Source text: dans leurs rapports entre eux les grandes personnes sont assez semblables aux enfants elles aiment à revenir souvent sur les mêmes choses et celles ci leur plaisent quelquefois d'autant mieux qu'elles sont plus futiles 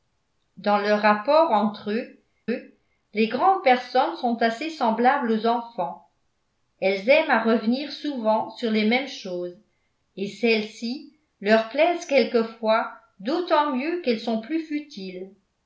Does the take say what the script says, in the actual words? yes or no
no